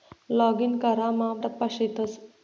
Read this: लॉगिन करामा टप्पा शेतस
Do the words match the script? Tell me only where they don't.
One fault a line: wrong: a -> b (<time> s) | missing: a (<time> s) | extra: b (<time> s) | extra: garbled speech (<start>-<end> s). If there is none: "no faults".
no faults